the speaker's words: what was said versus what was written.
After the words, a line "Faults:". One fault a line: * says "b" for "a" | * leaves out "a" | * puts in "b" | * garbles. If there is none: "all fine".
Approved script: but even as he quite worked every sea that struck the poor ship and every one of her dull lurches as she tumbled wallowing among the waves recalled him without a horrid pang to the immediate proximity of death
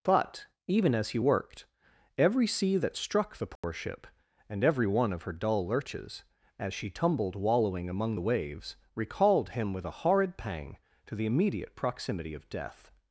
but even as he worked every sea that struck the poor ship and every one of her dull lurches as she tumbled wallowing among the waves recalled him with a horrid pang to the immediate proximity of death
Faults:
* leaves out "quite"
* says "with" for "without"